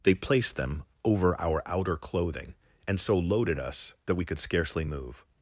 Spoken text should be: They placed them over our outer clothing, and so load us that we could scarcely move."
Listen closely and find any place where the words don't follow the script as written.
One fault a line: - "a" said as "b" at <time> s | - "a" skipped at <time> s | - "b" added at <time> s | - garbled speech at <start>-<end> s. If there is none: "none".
- "load" said as "loaded" at 3.2 s